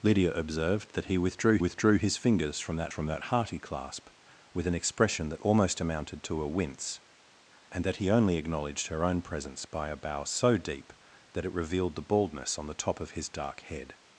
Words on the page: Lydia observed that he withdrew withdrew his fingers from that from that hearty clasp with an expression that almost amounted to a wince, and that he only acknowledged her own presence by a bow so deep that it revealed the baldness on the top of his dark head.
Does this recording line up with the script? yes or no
yes